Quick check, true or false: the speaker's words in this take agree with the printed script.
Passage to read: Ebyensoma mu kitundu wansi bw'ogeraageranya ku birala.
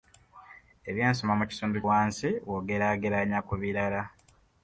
true